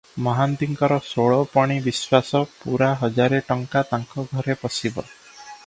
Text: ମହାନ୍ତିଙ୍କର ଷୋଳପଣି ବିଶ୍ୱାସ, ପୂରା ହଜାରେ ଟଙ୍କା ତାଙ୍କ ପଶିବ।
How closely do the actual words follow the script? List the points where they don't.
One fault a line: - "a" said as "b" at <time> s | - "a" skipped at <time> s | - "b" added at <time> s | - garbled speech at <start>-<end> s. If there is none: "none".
- "ଘରେ" added at 4.3 s